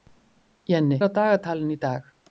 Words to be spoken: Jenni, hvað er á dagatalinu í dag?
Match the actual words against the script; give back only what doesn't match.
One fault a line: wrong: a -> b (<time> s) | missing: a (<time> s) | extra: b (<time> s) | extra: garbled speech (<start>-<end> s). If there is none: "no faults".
missing: hvað (1.0 s)